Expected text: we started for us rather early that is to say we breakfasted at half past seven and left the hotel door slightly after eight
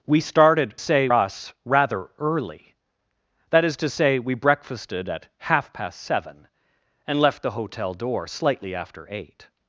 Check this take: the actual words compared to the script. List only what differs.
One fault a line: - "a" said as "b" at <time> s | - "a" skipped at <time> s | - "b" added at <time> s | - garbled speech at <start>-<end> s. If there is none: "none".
- "for" said as "say" at 0.8 s